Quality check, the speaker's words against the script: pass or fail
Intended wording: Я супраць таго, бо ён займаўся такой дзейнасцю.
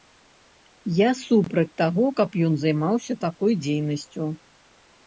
fail